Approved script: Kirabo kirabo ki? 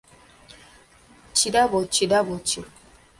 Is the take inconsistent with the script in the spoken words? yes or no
no